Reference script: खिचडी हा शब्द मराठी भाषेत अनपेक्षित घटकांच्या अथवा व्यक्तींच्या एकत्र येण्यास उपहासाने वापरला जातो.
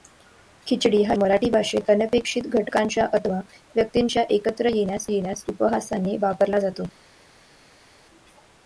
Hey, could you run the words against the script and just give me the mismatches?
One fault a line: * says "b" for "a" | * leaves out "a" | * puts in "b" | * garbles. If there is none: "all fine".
* leaves out "शब्द"
* puts in "येण्यास"